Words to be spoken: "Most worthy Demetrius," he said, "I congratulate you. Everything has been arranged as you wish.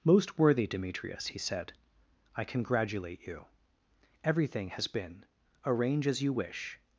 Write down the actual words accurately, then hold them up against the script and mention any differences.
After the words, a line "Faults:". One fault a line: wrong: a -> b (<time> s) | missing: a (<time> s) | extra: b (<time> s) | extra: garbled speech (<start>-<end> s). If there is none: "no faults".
"Most worthy Demetrius," he said, "I congratulate you. Everything has been arrange as you wish.
Faults:
wrong: arranged -> arrange (5.7 s)